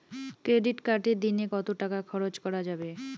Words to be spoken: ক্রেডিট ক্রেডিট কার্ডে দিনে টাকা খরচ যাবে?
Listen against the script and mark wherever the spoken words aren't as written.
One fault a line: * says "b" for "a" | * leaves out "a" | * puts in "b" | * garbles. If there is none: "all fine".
* leaves out "ক্রেডিট"
* puts in "কত"
* puts in "করা"